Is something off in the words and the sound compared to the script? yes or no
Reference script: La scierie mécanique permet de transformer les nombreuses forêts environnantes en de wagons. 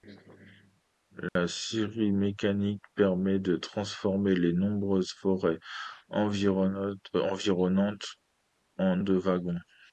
yes